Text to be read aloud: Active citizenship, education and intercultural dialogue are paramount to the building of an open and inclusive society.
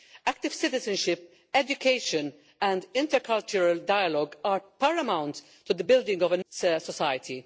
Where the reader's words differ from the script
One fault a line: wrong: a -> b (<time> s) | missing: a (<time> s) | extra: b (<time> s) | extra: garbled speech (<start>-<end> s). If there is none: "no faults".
missing: open and inclusive (6.4 s)